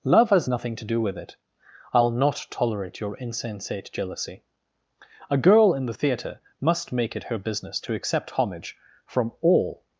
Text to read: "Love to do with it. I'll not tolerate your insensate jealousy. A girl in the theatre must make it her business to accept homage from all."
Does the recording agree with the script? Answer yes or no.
no